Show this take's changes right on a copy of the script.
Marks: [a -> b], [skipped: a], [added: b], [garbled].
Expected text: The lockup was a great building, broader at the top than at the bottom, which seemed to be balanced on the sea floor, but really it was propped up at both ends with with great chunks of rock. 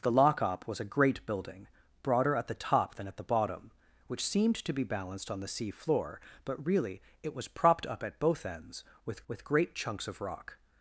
The lockup was a great building, broader at the top than at the bottom, which seemed to be balanced on the sea floor, but really it was propped up at both ends with with great chunks of rock.